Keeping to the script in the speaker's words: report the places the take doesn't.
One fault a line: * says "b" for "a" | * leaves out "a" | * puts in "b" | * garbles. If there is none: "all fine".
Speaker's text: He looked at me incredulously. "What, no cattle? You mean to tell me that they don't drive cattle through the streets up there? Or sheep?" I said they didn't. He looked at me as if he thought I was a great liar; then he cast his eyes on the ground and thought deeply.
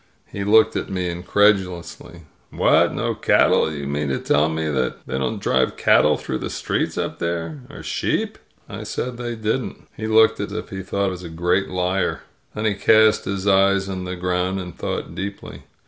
* leaves out "me as"
* leaves out "I"